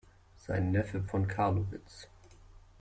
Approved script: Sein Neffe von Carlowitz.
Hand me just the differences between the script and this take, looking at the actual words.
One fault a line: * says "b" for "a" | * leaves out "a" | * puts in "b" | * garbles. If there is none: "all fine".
all fine